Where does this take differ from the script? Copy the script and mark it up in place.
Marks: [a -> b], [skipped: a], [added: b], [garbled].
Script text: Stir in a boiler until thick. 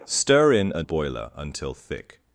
Stir in a boiler until thick.